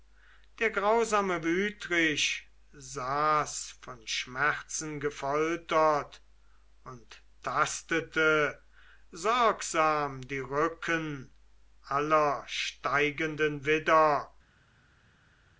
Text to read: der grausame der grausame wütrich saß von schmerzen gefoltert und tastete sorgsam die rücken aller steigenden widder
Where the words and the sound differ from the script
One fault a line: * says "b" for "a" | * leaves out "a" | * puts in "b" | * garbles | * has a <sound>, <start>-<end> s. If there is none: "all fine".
* leaves out "der grausame"